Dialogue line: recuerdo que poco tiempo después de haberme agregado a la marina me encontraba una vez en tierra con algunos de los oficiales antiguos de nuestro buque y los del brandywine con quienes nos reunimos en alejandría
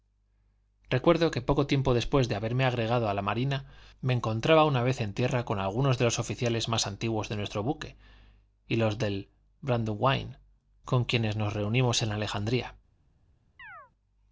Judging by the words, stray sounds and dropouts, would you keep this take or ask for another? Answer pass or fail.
fail